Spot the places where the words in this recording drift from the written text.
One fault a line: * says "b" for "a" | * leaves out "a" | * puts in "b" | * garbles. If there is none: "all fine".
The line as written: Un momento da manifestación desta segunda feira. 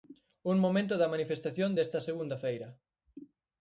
all fine